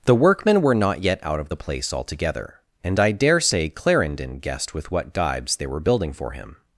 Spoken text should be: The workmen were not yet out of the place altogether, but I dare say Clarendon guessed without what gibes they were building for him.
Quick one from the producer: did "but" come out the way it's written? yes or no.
no